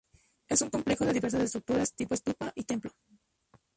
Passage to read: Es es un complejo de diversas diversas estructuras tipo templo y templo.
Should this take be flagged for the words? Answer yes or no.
yes